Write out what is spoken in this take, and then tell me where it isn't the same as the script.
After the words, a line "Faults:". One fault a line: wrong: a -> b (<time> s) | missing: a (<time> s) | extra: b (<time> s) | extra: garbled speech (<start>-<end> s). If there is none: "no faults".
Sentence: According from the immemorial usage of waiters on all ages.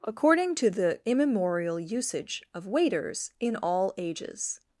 According to the immemorial usage of waiters in all ages.
Faults:
wrong: from -> to (0.6 s)
wrong: on -> in (3.4 s)